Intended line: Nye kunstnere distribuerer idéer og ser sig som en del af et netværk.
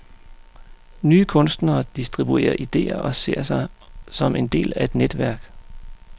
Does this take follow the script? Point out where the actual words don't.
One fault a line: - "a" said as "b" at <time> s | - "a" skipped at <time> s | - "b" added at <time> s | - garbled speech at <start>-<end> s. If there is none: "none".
none